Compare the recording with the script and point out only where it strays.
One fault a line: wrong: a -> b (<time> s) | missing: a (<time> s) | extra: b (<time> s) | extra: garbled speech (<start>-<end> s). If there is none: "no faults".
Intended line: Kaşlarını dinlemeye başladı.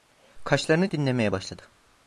no faults